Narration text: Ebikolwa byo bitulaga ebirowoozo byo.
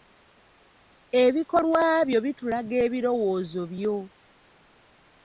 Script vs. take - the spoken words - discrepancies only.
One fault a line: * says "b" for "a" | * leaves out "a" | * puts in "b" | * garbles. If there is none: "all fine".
all fine